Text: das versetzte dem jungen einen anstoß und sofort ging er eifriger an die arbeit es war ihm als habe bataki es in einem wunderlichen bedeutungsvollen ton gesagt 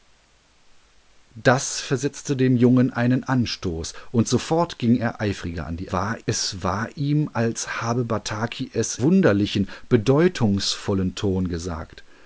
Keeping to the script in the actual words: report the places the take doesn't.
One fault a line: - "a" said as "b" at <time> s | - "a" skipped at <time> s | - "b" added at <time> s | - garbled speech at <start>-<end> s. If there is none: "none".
- "arbeit" said as "war" at 5.9 s
- "in einem" skipped at 9.0 s